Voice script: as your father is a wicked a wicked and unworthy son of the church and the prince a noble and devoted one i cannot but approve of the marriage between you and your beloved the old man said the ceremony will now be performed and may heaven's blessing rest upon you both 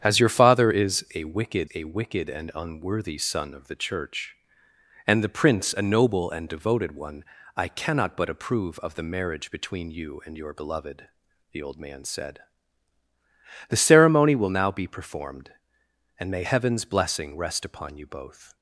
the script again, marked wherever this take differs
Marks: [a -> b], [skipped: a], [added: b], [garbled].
as your father is a wicked a wicked and unworthy son of the church and the prince a noble and devoted one i cannot but approve of the marriage between you and your beloved the old man said the ceremony will now be performed and may heaven's blessing rest upon you both